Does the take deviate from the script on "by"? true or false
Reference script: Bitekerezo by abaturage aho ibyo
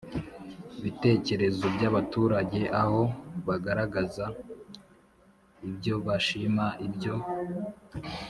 false